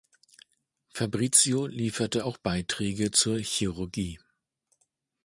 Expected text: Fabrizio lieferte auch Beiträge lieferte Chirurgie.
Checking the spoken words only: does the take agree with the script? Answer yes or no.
no